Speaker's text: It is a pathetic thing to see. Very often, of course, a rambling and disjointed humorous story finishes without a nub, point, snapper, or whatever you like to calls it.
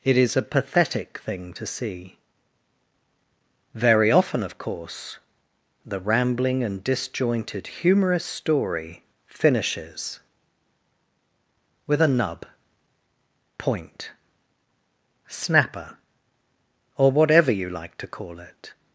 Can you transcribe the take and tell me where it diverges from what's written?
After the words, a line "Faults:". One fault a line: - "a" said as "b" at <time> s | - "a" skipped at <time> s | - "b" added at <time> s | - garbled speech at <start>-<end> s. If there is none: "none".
It is a pathetic thing to see. Very often, of course, the rambling and disjointed humorous story finishes with a nub, point, snapper, or whatever you like to call it.
Faults:
- "a" said as "the" at 5.8 s
- "without" said as "with" at 11.8 s
- "calls" said as "call" at 18.1 s